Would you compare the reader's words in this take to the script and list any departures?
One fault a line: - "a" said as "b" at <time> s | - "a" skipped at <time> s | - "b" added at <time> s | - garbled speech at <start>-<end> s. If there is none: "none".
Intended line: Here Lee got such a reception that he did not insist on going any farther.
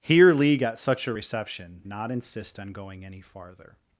- "that he did" skipped at 1.8 s